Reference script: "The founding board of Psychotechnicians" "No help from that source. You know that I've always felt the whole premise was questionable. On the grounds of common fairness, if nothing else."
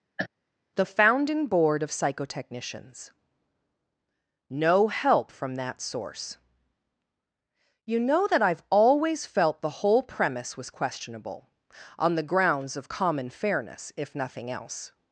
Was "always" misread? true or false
false